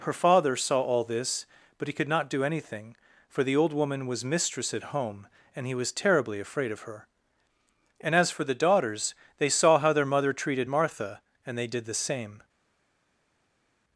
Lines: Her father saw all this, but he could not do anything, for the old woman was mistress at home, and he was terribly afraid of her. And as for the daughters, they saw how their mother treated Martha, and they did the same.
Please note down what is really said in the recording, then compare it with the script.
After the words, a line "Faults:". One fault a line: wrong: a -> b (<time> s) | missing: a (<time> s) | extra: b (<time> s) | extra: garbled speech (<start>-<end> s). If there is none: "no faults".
Her father saw all this, but he could not do anything, for the old woman was mistress at home, and he was terribly afraid of her. And as for the daughters, they saw how their mother treated Martha, and they did the same.
Faults:
no faults